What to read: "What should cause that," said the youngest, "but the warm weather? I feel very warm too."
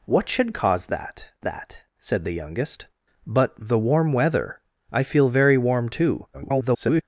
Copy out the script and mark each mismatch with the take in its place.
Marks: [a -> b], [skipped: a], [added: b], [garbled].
"What should cause that," [added: that] said the youngest, "but the warm weather? I feel very warm too." [garbled]